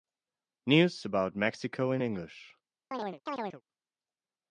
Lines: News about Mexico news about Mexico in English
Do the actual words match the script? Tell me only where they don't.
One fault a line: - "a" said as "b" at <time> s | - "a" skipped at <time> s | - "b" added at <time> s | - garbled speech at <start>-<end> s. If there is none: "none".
- "news about Mexico" skipped at 1.9 s